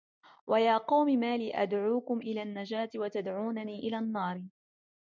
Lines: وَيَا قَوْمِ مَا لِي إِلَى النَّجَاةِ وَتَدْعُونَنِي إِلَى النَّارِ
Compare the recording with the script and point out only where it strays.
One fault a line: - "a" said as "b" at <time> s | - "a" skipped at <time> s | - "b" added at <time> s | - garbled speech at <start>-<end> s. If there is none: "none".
- "أَدْعُوكُمْ" added at 1.6 s